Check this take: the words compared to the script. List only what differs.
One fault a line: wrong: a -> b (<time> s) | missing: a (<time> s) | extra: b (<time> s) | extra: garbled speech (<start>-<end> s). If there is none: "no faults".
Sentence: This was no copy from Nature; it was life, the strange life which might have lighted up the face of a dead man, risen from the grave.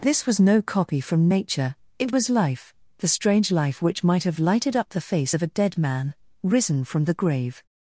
no faults